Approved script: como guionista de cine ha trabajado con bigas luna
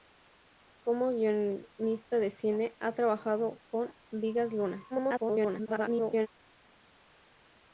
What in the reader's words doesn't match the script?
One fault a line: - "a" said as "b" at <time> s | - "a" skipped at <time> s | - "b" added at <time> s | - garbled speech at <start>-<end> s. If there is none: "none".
- garbled speech at 4.9-6.3 s